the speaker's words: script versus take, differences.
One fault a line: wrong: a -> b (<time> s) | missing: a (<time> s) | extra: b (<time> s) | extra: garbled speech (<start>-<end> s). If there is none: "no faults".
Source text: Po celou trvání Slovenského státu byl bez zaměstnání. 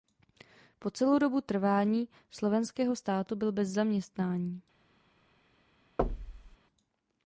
extra: dobu (1.2 s)